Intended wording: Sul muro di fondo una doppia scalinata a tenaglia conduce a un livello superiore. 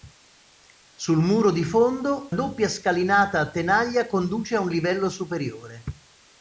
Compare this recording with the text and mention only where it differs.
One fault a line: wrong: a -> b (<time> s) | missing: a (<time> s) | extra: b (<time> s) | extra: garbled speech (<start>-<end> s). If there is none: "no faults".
missing: una (2.3 s)